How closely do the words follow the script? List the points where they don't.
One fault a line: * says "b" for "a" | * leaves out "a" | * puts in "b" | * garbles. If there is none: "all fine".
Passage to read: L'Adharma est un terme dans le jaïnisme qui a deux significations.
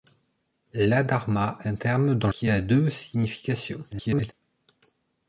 * leaves out "est"
* leaves out "le jaïnisme"
* garbles